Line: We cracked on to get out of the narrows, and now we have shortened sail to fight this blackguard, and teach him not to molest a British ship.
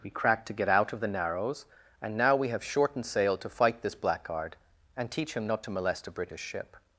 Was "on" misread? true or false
true